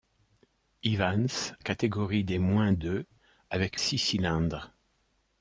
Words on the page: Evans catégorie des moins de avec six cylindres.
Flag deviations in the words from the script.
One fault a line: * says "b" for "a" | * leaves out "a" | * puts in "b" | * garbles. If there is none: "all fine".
all fine